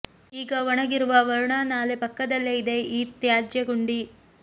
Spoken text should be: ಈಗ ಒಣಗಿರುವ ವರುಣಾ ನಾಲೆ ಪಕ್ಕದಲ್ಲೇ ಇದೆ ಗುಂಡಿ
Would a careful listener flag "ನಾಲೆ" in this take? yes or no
no